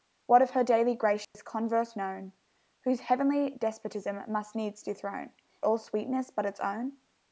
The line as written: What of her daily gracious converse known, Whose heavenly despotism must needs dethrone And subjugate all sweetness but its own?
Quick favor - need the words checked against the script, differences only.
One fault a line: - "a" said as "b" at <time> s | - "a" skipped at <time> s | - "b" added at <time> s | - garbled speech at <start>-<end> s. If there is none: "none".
- "And subjugate" skipped at 5.3 s